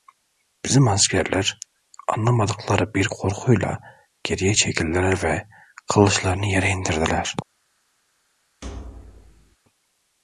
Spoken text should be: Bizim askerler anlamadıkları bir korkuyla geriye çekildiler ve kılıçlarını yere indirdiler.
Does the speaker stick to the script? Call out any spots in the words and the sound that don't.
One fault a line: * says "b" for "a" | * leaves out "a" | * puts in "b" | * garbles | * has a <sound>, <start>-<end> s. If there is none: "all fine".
* has a thud, 8.6-9.6 s